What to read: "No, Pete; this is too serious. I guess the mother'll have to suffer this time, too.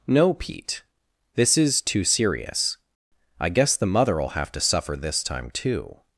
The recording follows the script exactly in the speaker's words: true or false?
true